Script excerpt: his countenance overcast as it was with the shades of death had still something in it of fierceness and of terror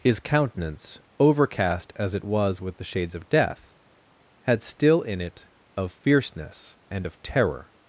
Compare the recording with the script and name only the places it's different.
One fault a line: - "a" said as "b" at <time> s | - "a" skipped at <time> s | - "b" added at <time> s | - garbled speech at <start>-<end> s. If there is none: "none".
- "something" skipped at 5.0 s